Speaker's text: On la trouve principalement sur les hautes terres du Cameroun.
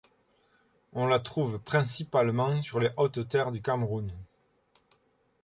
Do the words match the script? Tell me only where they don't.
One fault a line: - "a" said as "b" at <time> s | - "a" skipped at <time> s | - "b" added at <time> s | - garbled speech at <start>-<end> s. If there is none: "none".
none